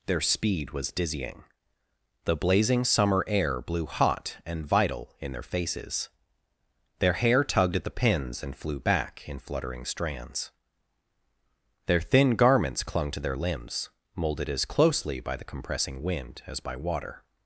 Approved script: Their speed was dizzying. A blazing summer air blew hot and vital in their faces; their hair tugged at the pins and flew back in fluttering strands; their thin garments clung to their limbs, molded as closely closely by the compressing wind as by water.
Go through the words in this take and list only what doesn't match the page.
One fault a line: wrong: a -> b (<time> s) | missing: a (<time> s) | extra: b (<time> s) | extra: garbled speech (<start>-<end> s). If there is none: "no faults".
wrong: A -> The (2.2 s)
missing: closely (15.2 s)